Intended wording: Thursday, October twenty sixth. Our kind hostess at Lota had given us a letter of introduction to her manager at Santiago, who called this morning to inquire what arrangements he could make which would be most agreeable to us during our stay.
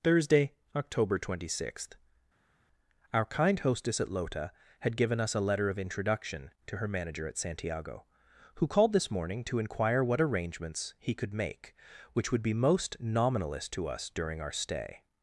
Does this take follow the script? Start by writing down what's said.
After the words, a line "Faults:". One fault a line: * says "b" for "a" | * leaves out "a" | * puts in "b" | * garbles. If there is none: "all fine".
Thursday, October twenty sixth. Our kind hostess at Lota had given us a letter of introduction to her manager at Santiago, who called this morning to inquire what arrangements he could make which would be most nominalist to us during our stay.
Faults:
* says "nominalist" for "agreeable"